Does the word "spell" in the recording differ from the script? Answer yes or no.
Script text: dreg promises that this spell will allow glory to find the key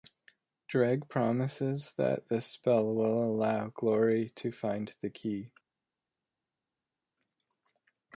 no